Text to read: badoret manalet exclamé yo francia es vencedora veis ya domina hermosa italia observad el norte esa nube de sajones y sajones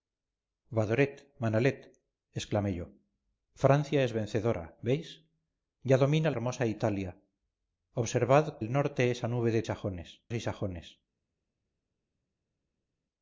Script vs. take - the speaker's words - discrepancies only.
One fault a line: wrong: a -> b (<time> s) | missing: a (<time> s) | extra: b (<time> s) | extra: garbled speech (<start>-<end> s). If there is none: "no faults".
no faults